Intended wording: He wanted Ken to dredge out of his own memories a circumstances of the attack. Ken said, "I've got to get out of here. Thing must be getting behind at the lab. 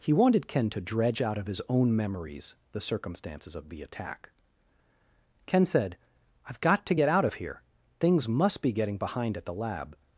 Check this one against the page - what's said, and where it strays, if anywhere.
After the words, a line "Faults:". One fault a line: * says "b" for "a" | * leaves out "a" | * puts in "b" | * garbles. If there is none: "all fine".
He wanted Ken to dredge out of his own memories the circumstances of the attack. Ken said, "I've got to get out of here. Things must be getting behind at the lab.
Faults:
* says "the" for "a"
* says "Things" for "Thing"